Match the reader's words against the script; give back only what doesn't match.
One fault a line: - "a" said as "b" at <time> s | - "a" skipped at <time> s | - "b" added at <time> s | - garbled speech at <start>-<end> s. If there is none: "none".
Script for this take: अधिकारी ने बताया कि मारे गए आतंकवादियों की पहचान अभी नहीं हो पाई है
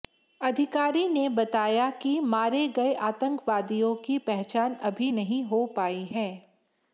none